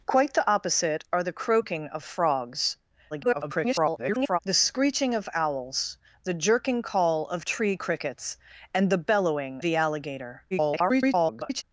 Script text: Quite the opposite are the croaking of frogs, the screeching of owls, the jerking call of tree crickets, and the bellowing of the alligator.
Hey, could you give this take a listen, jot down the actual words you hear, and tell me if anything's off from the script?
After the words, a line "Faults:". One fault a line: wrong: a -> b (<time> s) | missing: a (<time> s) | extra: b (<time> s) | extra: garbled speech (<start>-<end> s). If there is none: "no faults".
Quite the opposite are the croaking of frogs, [garbled] the screeching of owls, the jerking call of tree crickets, and the bellowing the alligator. [garbled]
Faults:
extra: garbled speech (3.1-4.4 s)
missing: of (9.6 s)
extra: garbled speech (10.5-11.6 s)